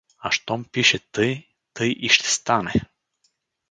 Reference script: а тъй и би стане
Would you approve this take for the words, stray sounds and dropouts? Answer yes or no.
no